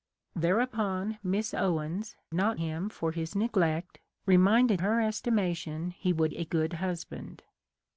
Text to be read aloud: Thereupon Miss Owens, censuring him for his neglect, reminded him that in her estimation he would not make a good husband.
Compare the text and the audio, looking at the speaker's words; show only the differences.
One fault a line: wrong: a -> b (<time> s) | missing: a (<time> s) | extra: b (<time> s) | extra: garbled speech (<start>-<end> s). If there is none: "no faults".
wrong: censuring -> not (2.3 s)
missing: him that in (4.8 s)
missing: not make (6.3 s)